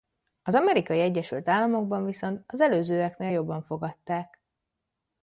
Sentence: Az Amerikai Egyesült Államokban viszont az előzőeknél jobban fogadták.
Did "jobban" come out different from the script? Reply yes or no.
no